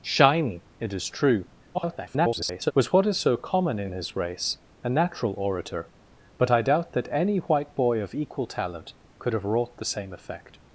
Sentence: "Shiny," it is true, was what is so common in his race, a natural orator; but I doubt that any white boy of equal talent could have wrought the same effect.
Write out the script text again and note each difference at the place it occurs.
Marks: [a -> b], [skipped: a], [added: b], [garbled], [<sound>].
"Shiny," it is true, [garbled] was what is so common in his race, a natural orator; but I doubt that any white boy of equal talent could have wrought the same effect.